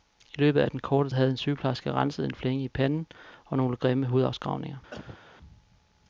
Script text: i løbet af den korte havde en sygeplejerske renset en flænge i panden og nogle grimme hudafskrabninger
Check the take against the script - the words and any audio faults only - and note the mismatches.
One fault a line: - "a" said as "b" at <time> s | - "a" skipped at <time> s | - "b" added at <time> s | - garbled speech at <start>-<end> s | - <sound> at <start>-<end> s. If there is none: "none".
- cough at 4.9-5.2 s